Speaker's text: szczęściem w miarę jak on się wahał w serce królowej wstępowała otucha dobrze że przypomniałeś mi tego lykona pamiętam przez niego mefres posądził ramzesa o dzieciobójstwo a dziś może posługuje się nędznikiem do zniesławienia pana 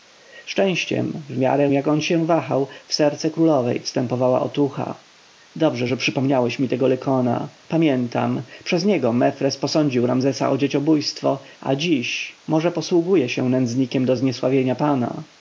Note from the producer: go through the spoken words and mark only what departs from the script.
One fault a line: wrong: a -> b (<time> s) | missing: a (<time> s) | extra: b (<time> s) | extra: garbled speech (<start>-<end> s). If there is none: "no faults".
no faults